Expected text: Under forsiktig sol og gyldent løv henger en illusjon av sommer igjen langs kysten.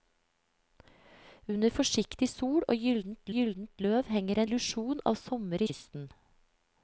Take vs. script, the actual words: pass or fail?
fail